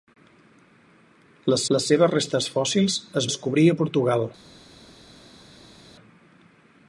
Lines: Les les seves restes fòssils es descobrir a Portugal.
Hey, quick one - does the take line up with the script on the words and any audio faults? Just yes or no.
yes